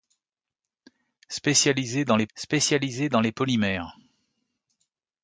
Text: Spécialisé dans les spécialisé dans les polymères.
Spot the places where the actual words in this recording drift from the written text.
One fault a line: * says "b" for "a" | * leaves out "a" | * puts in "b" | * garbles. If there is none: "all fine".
all fine